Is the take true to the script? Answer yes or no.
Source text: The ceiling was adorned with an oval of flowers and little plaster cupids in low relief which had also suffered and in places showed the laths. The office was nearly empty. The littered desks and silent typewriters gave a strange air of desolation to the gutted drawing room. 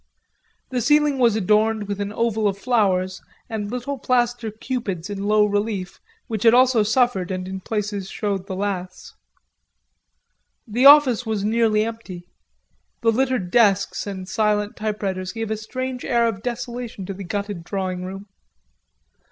yes